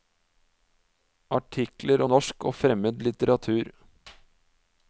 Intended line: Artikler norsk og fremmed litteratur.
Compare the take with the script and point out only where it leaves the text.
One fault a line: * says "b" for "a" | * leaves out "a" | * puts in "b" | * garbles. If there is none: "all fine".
all fine